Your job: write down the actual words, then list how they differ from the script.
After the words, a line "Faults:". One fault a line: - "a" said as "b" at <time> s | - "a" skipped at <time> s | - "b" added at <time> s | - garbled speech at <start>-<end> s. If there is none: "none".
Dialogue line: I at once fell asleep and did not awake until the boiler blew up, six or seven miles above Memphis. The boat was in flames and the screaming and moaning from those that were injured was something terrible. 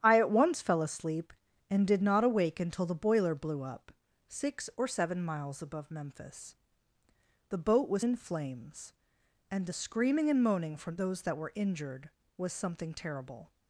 I at once fell asleep and did not awake until the boiler blew up, six or seven miles above Memphis. The boat was in flames and the screaming and moaning from those that were injured was something terrible.
Faults:
none